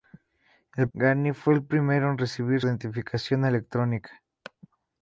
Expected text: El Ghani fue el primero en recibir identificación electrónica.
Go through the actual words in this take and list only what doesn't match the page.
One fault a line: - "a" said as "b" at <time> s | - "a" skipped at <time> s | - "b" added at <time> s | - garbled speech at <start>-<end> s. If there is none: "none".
none